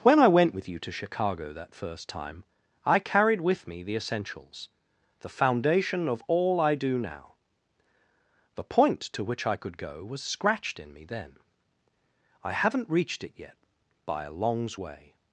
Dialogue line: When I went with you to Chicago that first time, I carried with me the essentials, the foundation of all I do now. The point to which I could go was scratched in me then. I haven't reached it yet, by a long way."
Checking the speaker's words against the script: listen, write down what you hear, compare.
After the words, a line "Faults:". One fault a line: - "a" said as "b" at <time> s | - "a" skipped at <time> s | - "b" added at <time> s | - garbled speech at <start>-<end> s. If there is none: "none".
When I went with you to Chicago that first time, I carried with me the essentials, the foundation of all I do now. The point to which I could go was scratched in me then. I haven't reached it yet, by a longs way."
Faults:
- "long" said as "longs" at 14.3 s